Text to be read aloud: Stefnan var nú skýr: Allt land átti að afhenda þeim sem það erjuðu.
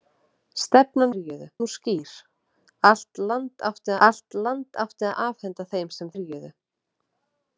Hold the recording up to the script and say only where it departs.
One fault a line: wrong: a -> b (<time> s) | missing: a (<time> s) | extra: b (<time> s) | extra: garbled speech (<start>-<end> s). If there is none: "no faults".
wrong: var -> erjuðu (1.1 s)
extra: Allt land átti (4.1 s)
missing: það (6.1 s)